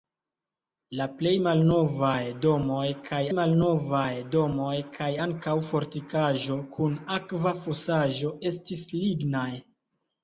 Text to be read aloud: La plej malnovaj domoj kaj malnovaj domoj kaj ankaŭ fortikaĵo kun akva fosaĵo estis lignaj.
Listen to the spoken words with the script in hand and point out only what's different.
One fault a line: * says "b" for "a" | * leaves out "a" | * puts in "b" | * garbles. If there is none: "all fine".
all fine